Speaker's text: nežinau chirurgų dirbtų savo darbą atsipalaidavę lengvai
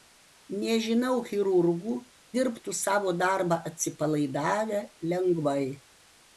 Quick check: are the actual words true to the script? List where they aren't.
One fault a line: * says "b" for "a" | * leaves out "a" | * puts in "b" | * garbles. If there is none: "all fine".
all fine